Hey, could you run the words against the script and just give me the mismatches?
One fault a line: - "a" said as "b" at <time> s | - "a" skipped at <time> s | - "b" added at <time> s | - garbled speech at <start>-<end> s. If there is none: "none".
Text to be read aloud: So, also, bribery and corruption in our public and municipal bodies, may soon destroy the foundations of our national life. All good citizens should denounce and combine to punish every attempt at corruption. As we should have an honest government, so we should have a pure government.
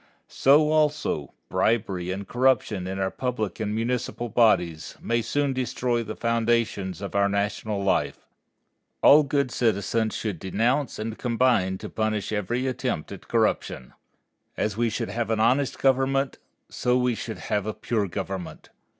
none